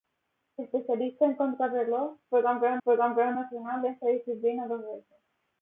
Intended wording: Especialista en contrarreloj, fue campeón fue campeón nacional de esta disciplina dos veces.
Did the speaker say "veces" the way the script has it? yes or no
yes